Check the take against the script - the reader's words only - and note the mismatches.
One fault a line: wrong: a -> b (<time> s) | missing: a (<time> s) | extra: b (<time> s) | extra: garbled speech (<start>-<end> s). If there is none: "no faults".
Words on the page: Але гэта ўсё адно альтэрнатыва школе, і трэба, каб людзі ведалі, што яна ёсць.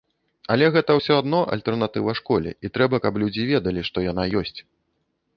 no faults